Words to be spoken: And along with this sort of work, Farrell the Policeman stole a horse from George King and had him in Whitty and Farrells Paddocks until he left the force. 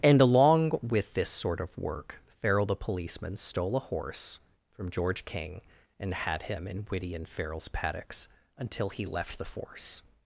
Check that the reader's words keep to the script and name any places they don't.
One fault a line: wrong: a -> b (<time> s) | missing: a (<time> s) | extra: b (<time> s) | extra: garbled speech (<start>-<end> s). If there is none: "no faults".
no faults